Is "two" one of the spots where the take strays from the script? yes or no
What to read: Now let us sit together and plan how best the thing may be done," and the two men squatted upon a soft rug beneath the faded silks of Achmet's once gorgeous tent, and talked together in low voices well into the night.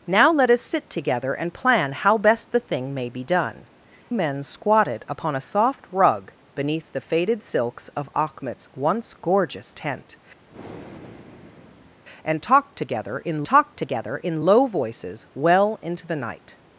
yes